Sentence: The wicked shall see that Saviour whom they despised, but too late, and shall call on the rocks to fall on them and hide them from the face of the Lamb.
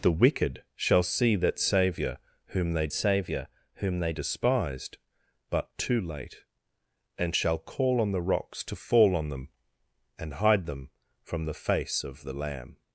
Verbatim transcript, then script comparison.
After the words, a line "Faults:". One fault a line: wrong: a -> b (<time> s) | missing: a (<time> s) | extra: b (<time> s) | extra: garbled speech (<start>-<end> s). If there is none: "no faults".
The wicked shall see that Saviour whom they Saviour whom they despised, but too late, and shall call on the rocks to fall on them and hide them from the face of the Lamb.
Faults:
extra: Saviour whom they (2.9 s)